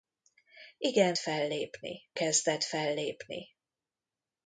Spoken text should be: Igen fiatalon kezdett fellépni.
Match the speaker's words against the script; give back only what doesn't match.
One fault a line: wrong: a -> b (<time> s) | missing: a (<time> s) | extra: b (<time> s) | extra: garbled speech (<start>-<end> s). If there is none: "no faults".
wrong: fiatalon -> fellépni (1.2 s)